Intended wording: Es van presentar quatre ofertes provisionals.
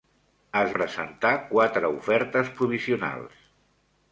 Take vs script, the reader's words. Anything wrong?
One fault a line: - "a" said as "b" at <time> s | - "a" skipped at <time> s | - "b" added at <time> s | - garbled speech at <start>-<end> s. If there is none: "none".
- "van" skipped at 0.7 s